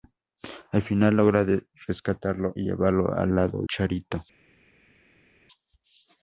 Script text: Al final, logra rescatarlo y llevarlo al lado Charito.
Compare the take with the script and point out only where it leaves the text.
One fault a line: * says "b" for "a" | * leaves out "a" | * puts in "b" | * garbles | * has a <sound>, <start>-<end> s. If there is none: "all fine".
all fine